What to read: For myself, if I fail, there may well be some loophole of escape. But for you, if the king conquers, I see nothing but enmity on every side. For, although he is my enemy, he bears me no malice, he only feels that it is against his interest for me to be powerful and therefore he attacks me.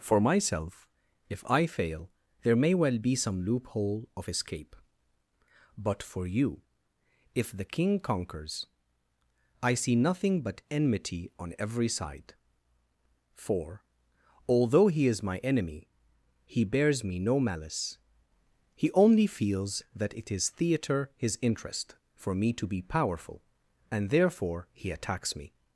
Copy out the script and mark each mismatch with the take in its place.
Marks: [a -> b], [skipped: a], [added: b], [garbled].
For myself, if I fail, there may well be some loophole of escape. But for you, if the king conquers, I see nothing but enmity on every side. For, although he is my enemy, he bears me no malice, he only feels that it is [against -> theatre] his interest for me to be powerful and therefore he attacks me.